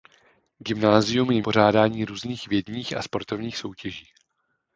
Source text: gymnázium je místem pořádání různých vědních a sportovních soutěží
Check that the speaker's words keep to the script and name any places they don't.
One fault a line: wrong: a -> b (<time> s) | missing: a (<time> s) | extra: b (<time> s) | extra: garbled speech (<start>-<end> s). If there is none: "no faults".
missing: místem (1.4 s)